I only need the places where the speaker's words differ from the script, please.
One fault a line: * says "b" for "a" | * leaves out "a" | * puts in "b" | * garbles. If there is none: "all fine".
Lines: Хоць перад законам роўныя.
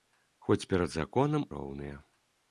all fine